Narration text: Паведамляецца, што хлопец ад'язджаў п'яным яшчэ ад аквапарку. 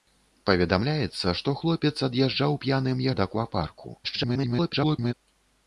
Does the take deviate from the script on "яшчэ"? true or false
true